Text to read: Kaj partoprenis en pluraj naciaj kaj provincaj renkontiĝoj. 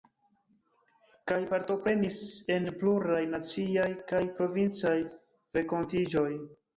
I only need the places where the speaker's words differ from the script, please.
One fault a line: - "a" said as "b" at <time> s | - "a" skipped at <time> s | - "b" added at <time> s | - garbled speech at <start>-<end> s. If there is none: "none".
none